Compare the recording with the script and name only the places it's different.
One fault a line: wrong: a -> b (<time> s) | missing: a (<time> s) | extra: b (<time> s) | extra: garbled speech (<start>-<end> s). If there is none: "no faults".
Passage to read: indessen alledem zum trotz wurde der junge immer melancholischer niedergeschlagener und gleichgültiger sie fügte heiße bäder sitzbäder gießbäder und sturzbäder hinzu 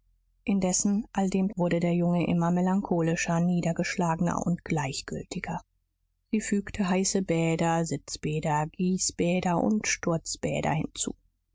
missing: zum trotz (1.5 s)